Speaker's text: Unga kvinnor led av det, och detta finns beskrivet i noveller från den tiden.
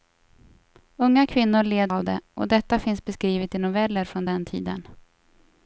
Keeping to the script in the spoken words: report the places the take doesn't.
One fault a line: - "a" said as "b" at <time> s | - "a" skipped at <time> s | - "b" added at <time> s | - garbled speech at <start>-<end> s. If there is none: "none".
none